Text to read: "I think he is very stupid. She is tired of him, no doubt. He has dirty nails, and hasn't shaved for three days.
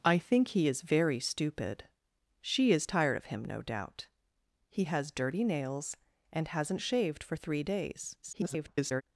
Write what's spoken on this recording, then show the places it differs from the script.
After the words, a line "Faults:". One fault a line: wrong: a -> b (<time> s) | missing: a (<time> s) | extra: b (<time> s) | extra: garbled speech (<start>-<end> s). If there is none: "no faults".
"I think he is very stupid. She is tired of him, no doubt. He has dirty nails, and hasn't shaved for three days. [garbled]
Faults:
extra: garbled speech (8.2-9.0 s)